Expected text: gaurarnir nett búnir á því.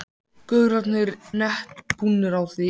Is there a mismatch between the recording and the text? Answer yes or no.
no